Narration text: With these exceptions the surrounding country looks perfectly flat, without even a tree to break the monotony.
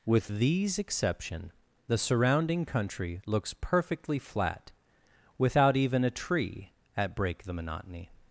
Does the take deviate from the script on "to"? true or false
true